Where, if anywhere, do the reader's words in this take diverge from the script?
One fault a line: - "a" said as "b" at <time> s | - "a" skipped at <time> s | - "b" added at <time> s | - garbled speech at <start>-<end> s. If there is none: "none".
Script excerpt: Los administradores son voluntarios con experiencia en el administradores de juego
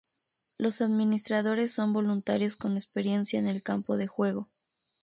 - "administradores" said as "campo" at 3.6 s